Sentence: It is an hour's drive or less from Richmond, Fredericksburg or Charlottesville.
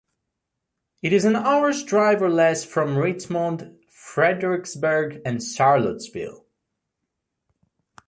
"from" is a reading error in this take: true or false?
false